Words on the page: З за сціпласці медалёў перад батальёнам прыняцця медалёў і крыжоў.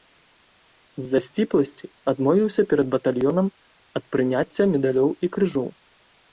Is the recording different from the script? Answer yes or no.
yes